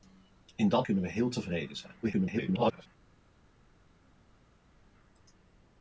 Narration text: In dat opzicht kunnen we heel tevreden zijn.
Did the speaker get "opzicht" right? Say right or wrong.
wrong